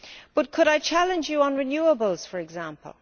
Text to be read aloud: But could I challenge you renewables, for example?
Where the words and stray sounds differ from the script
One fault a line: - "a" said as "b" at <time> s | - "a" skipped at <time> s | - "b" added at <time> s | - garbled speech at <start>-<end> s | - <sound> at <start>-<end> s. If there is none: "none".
- "on" added at 1.4 s